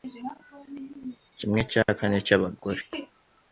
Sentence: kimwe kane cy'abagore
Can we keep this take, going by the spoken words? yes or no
no